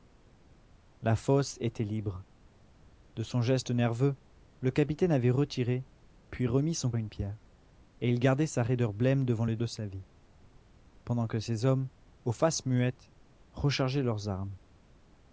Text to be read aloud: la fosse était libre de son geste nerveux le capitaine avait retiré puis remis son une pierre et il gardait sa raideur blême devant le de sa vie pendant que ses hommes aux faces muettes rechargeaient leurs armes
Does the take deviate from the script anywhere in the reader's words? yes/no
no